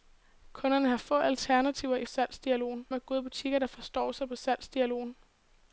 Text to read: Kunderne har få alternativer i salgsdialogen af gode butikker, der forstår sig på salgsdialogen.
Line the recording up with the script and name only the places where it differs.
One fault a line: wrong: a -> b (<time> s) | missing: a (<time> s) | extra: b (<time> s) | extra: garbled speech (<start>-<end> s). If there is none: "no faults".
no faults